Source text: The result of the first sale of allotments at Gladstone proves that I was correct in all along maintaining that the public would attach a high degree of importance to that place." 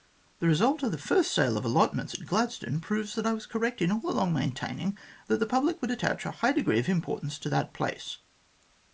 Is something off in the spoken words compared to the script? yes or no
no